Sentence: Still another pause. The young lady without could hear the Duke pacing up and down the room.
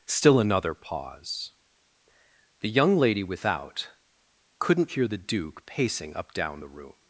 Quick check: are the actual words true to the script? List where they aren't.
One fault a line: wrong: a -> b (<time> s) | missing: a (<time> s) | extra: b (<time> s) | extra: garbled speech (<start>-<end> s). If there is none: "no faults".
wrong: could -> couldn't (4.6 s)
missing: and (6.3 s)